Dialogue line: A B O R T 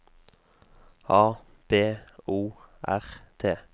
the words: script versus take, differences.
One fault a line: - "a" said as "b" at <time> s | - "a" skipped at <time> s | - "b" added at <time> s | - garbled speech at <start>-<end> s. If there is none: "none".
none